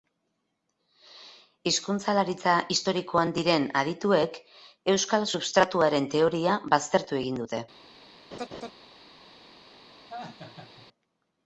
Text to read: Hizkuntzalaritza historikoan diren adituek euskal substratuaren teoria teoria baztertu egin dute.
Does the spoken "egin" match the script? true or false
true